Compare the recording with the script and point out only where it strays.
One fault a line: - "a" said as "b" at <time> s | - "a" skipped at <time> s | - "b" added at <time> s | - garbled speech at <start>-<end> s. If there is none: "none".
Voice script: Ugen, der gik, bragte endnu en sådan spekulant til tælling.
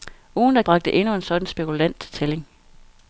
- "gik" skipped at 0.6 s